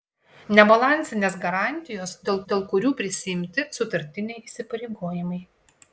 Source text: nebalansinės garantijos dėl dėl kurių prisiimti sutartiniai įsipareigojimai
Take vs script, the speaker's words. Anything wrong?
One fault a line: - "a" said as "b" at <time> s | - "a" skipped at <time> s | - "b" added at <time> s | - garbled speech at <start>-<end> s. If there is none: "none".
none